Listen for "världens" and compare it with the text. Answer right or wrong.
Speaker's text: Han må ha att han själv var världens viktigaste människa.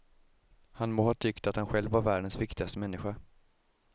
right